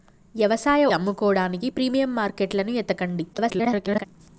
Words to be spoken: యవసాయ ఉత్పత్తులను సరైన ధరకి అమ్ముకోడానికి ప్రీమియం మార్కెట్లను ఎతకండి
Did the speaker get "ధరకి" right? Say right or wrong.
wrong